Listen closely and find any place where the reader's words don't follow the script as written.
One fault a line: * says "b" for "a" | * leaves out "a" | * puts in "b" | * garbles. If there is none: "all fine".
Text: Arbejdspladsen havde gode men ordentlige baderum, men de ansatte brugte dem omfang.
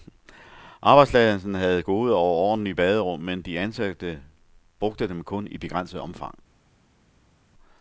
* says "og" for "men"
* puts in "kun i begrænset"